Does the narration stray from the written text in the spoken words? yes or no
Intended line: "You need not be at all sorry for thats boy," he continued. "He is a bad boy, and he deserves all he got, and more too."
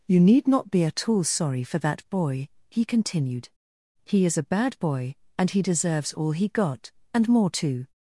yes